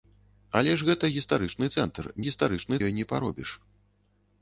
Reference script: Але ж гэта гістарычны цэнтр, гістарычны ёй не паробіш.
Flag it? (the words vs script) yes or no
no